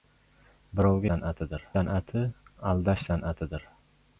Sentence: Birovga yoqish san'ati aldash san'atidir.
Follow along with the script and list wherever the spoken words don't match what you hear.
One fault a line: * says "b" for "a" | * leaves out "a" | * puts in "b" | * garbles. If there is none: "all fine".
* says "san'atidir" for "yoqish"